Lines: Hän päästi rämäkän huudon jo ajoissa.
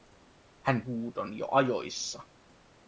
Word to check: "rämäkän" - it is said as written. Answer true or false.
false